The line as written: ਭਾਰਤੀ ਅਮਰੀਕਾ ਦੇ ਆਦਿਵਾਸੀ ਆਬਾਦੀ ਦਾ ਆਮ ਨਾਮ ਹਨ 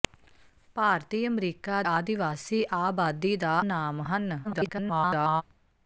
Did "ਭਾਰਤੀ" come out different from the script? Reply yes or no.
no